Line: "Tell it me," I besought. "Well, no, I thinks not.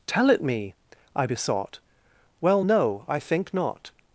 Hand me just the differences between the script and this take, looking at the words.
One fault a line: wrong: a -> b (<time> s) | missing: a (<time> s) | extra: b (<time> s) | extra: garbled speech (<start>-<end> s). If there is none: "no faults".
wrong: thinks -> think (3.2 s)